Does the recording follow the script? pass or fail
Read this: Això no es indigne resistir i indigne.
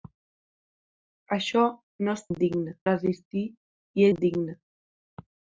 pass